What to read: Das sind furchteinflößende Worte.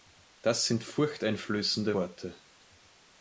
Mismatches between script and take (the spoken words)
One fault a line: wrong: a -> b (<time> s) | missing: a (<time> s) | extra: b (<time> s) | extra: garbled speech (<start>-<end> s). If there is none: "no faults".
no faults